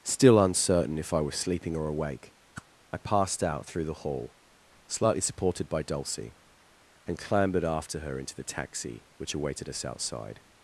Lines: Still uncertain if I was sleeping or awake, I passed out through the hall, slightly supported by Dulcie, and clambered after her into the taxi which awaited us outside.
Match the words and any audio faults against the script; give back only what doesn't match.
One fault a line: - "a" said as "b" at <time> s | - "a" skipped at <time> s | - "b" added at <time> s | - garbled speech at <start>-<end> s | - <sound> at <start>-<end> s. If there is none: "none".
- whoosh at 2.5-2.7 s